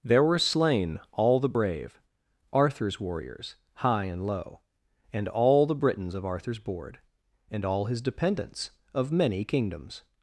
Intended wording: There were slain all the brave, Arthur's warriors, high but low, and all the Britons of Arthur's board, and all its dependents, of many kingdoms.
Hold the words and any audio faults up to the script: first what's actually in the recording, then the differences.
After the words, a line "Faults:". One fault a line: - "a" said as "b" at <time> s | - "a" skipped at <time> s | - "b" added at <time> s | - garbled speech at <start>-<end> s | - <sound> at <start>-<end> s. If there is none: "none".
There were slain all the brave, Arthur's warriors, high and low, and all the Britons of Arthur's board, and all his dependents, of many kingdoms.
Faults:
- "but" said as "and" at 4.0 s
- "its" said as "his" at 7.9 s